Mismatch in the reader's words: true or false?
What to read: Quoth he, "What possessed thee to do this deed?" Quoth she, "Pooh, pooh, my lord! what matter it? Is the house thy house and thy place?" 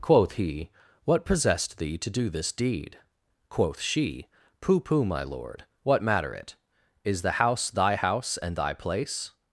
false